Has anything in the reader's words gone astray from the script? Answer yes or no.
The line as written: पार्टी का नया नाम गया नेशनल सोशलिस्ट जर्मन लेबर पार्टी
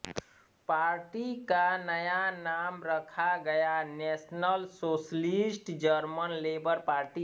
yes